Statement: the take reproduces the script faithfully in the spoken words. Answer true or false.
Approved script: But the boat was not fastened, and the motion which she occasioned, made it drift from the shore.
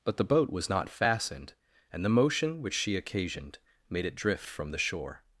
true